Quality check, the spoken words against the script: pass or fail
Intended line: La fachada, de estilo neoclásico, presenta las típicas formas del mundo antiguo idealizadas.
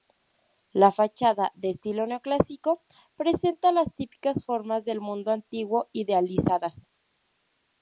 pass